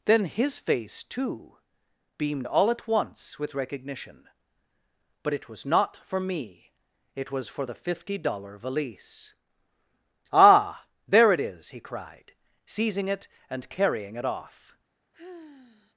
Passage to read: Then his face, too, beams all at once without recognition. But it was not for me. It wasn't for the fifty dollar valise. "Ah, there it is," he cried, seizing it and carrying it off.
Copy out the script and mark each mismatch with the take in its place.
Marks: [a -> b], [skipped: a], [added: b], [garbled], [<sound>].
Then his face, too, [beams -> beamed] all at once [without -> with] recognition. But it was not for me. It [wasn't -> was] for the fifty dollar valise. "Ah, there it is," he cried, seizing it and carrying it off. [sigh]